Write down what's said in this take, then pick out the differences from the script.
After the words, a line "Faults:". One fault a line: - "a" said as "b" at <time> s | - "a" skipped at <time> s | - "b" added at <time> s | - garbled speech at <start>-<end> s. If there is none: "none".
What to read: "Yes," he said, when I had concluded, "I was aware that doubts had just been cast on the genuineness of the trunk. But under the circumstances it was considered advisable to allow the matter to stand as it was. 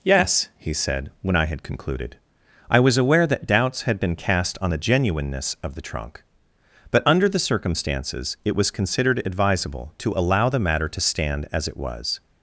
"Yes," he said, when I had concluded, "I was aware that doubts had been cast on the genuineness of the trunk. But under the circumstances it was considered advisable to allow the matter to stand as it was.
Faults:
- "just" skipped at 4.0 s